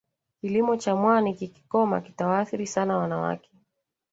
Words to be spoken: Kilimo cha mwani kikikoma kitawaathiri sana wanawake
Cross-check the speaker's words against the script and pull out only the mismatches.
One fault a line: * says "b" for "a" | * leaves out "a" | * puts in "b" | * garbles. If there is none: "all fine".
all fine